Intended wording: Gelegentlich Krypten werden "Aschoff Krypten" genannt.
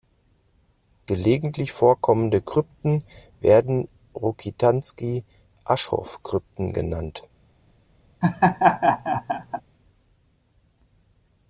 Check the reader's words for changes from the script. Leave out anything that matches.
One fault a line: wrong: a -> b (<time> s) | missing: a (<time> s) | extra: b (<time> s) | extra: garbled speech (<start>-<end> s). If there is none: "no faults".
extra: vorkommende (1.7 s)
extra: Rokitansky (4.1 s)